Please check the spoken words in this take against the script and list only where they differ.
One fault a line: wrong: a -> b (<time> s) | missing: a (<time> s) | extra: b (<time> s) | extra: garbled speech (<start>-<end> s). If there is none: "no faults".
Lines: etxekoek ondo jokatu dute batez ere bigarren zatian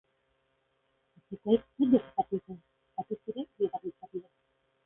no faults